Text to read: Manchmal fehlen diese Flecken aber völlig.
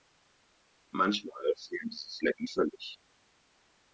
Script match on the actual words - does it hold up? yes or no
no